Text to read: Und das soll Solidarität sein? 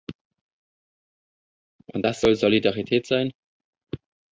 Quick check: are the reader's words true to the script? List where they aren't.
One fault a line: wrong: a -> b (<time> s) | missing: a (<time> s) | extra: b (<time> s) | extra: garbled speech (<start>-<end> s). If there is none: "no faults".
no faults